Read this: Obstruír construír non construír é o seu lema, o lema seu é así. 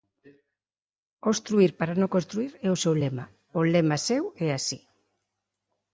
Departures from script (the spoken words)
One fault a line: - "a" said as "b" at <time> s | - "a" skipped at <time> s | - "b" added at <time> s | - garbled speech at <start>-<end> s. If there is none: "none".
- "construír" said as "para" at 1.8 s